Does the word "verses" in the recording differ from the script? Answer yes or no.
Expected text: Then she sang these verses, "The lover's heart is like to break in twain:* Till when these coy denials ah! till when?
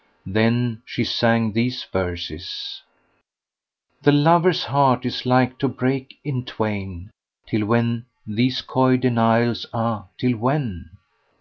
no